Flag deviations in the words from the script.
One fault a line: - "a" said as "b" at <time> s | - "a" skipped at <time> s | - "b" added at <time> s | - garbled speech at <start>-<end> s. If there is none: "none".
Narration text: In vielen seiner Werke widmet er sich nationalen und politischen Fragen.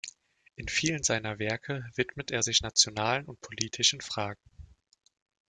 none